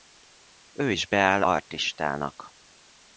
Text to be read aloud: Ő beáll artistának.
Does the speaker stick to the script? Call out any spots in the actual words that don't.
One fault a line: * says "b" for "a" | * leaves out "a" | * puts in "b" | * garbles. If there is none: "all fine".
* puts in "is"